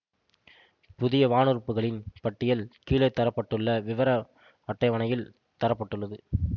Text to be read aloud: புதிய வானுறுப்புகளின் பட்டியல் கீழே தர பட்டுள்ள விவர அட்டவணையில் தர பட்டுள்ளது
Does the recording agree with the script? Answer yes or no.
yes